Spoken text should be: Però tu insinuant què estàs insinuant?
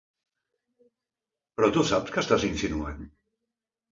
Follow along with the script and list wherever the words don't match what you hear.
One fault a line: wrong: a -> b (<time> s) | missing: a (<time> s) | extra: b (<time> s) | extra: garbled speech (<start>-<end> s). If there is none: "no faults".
wrong: insinuant -> saps (1.9 s)